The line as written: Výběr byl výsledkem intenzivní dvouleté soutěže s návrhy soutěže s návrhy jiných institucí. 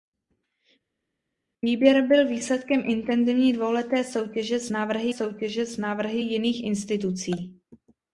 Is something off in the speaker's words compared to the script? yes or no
no